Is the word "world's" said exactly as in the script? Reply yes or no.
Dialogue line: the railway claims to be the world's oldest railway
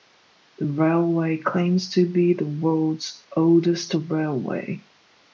yes